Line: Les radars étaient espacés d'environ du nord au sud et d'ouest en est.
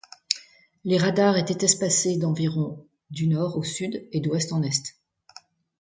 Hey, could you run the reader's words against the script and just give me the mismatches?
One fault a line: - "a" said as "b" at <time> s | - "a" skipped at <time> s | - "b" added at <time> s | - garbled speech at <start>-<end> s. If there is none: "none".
none